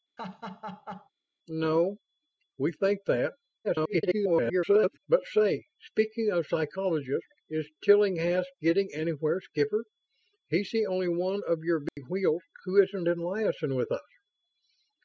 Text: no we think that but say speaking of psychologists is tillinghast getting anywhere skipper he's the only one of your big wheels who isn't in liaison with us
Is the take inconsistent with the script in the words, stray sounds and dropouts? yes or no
yes